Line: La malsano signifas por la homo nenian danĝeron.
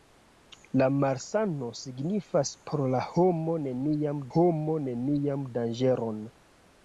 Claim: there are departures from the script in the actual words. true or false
true